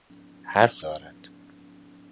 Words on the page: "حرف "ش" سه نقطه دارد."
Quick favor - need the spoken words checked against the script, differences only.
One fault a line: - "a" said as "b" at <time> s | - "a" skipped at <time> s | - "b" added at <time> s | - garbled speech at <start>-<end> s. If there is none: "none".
- "ش سه نقطه" skipped at 0.8 s